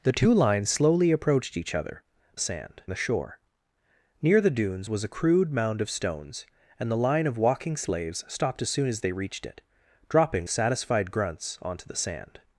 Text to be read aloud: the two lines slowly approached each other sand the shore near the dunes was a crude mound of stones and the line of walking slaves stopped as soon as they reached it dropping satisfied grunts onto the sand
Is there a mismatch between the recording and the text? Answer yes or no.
no